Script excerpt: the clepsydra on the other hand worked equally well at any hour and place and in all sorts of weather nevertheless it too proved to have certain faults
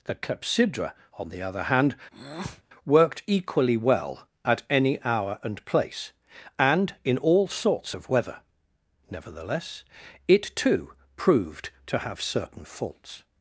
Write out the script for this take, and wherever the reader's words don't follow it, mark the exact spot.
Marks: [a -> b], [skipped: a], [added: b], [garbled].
the clepsydra on the other hand worked equally well at any hour and place and in all sorts of weather nevertheless it too proved to have certain faults